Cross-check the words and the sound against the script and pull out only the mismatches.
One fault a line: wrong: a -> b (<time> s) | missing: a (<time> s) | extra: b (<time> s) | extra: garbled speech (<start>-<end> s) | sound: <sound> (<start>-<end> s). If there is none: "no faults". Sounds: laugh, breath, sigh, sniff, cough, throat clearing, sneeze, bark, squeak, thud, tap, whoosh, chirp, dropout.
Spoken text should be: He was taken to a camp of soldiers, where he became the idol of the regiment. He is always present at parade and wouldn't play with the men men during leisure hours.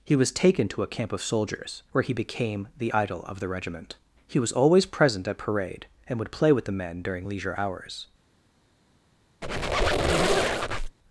wrong: is -> was (4.4 s)
wrong: wouldn't -> would (6.2 s)
missing: men (7.0 s)
sound: squeak (9.4-11.0 s)